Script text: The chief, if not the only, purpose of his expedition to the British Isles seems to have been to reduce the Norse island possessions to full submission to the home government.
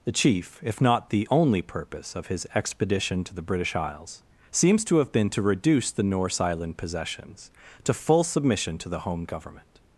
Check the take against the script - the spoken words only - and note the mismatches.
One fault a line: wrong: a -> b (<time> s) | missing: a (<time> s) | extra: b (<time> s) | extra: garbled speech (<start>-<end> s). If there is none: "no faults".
no faults